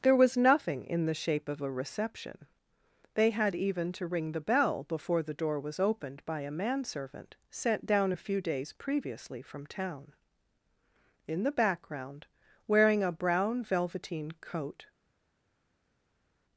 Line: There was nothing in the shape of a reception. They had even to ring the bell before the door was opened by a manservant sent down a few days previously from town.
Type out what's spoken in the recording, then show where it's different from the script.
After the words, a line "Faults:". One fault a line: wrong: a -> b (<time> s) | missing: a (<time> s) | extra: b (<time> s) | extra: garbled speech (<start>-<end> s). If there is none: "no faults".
There was nothing in the shape of a reception. They had even to ring the bell before the door was opened by a manservant sent down a few days previously from town. In the background, wearing a brown velveteen coat
Faults:
extra: In the background wearing a brown velveteen coat (11.3 s)